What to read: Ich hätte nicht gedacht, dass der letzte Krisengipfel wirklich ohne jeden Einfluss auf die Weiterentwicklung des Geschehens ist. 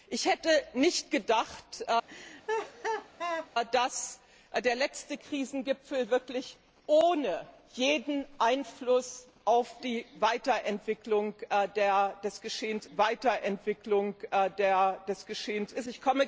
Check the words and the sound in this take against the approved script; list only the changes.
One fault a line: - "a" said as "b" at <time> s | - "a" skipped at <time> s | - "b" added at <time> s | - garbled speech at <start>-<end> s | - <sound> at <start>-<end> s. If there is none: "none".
- laugh at 2.1-3.5 s
- "Weiterentwicklung des Geschehens" added at 13.0 s